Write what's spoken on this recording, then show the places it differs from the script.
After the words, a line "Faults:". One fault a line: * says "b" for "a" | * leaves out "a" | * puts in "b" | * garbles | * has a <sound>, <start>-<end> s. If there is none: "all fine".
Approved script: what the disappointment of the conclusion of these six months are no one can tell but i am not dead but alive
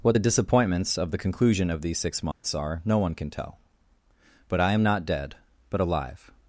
what the disappointments of the conclusion of these six months are no one can tell but i am not dead but alive
Faults:
* says "disappointments" for "disappointment"
* has a dropout, 2.3-2.4 s